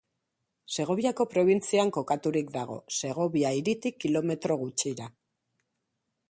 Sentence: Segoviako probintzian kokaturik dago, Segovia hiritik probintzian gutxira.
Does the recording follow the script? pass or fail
fail